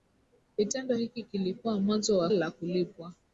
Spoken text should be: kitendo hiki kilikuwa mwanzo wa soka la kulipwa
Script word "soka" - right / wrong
wrong